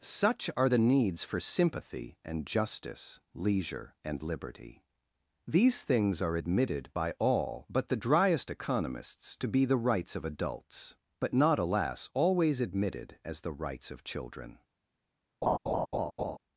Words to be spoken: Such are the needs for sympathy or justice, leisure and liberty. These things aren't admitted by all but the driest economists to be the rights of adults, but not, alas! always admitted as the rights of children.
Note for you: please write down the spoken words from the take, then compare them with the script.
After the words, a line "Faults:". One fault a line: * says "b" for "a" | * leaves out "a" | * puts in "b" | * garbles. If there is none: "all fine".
Such are the needs for sympathy and justice, leisure and liberty. These things are admitted by all but the driest economists to be the rights of adults, but not, alas! always admitted as the rights of children.
Faults:
* says "and" for "or"
* says "are" for "aren't"